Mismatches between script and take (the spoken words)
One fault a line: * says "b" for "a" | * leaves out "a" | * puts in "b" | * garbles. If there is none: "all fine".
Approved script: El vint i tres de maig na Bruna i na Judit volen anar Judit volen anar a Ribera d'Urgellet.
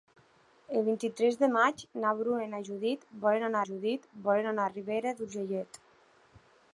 all fine